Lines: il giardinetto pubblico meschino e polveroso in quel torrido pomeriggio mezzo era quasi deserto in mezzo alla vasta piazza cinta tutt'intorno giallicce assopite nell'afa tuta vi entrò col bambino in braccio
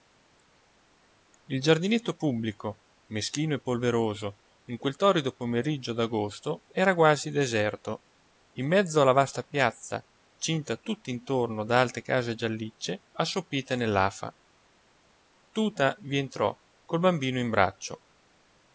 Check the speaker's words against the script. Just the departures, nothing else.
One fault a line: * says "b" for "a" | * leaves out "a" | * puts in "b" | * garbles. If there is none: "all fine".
* says "d'agosto" for "mezzo"
* puts in "da alte case"